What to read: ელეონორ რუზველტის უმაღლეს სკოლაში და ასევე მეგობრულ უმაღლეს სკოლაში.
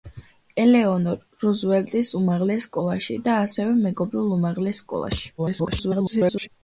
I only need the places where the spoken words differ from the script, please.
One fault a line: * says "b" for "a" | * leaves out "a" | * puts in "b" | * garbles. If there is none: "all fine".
* garbles